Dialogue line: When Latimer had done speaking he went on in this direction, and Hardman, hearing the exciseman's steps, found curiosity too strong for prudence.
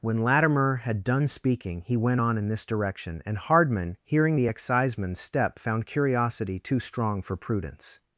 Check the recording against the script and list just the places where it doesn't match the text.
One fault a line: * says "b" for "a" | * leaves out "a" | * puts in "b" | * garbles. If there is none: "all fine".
* says "step" for "steps"